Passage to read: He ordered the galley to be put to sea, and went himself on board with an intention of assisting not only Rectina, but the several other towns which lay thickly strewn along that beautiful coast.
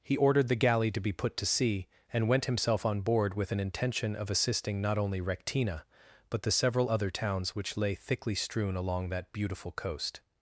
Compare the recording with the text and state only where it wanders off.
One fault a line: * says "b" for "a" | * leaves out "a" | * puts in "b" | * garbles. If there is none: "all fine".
all fine